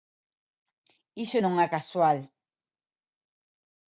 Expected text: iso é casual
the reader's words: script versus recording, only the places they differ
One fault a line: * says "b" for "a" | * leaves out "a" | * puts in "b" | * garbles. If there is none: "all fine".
* puts in "non"